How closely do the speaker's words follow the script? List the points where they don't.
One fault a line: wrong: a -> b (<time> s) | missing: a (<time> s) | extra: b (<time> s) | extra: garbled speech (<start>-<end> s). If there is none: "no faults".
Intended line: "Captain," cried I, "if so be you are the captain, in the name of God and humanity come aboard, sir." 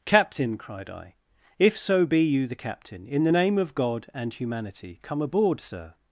missing: are (2.5 s)